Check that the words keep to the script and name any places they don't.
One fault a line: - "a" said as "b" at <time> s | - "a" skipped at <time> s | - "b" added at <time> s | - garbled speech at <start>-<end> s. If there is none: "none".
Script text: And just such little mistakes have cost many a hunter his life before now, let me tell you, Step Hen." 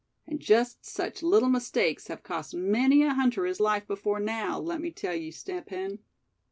none